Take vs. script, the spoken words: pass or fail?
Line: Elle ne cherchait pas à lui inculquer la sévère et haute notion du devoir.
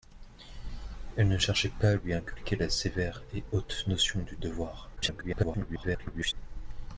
fail